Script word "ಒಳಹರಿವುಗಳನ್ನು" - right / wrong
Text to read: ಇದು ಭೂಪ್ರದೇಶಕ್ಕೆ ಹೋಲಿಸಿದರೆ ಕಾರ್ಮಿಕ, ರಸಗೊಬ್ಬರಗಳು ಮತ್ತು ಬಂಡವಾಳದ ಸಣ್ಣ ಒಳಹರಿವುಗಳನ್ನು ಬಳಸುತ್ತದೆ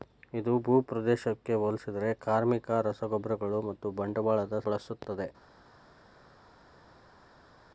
wrong